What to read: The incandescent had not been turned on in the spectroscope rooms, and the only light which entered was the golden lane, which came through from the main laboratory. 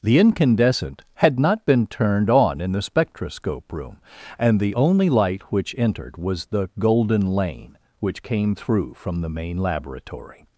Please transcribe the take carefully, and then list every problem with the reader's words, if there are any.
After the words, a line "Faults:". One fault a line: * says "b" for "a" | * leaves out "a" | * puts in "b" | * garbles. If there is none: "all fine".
The incandescent had not been turned on in the spectroscope room, and the only light which entered was the golden lane, which came through from the main laboratory.
Faults:
* says "room" for "rooms"